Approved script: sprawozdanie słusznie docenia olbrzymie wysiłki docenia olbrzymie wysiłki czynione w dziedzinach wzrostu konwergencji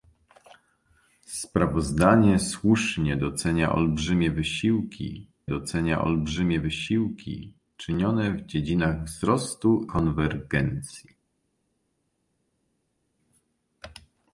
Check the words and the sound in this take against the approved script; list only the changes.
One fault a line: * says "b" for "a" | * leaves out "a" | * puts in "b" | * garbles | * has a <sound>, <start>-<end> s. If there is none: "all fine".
all fine